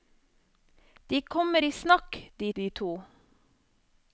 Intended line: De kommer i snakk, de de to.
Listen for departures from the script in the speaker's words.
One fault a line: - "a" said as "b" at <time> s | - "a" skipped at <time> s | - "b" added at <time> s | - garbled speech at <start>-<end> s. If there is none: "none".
none